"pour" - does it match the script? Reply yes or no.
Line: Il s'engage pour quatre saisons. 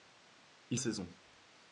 no